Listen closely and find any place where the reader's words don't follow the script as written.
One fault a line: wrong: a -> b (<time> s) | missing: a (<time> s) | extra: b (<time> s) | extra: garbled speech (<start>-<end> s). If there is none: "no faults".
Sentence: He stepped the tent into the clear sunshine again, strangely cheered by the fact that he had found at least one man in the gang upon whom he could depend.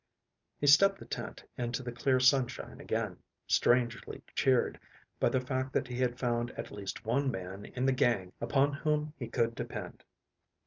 no faults